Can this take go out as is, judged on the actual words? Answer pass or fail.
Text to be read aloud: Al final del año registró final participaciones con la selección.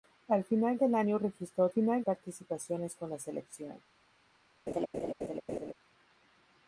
pass